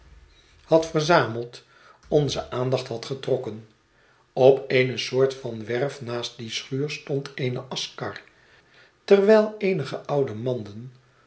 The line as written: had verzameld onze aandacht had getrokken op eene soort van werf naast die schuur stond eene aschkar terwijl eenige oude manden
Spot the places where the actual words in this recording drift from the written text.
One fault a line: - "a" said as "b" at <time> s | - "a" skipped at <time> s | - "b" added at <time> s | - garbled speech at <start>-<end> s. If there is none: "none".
none